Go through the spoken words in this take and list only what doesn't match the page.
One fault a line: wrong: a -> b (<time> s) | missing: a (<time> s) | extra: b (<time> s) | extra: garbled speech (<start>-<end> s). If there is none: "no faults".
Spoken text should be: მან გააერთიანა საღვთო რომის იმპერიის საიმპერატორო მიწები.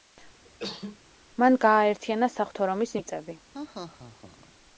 missing: იმპერიის საიმპერატორო (3.0 s)